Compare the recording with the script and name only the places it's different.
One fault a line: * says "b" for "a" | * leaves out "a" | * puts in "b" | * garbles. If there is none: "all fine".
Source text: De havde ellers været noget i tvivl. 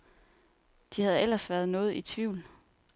all fine